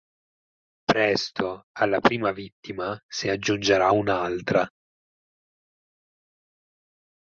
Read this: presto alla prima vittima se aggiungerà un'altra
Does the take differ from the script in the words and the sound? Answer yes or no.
no